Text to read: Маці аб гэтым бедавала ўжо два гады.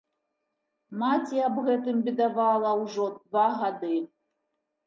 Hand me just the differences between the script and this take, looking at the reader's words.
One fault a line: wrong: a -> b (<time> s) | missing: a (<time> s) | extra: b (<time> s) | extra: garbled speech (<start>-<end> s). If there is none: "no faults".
no faults